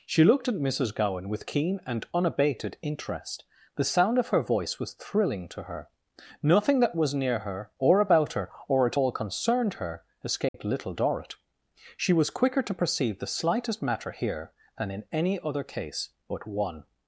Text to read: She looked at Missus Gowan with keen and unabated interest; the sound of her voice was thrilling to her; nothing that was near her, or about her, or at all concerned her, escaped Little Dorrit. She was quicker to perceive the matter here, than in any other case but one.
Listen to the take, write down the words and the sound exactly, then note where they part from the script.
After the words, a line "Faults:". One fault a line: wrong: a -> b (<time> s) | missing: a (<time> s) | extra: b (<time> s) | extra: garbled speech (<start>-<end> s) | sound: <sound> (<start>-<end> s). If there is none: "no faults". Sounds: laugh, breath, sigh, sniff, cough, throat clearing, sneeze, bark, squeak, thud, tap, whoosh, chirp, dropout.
She looked at Missus Gowan with keen and unabated interest; the sound of her voice was thrilling to her; nothing that was near her, or about her, or at all concerned her, escaped Little Dorrit. She was quicker to perceive the slightest matter here, than in any other case but one.
Faults:
sound: dropout (10.5-10.5 s)
extra: slightest (13.3 s)